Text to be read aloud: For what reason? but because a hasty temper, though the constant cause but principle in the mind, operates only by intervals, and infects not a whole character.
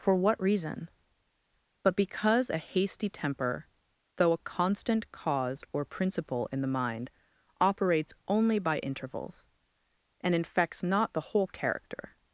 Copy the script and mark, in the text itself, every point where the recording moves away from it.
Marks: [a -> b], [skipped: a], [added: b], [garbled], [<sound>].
For what reason? but because a hasty temper, though [the -> a] constant cause [but -> or] principle in the mind, operates only by intervals, and infects not [a -> the] whole character.